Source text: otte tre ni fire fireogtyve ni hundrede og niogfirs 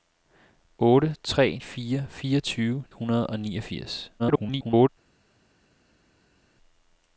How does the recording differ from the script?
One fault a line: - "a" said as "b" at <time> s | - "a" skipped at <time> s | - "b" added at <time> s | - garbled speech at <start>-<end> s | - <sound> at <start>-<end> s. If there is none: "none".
- "ni" skipped at 1.6 s
- "ni" skipped at 2.8 s
- garbled speech at 4.2-4.9 s